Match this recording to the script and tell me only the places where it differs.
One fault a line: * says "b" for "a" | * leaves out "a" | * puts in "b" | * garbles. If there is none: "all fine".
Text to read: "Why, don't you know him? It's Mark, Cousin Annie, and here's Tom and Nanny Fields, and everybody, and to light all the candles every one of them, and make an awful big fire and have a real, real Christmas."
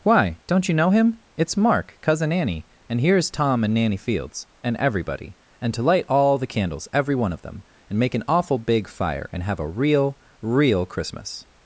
all fine